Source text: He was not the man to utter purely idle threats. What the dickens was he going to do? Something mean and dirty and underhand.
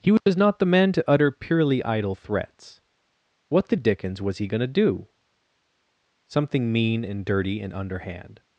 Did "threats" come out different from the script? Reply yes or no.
no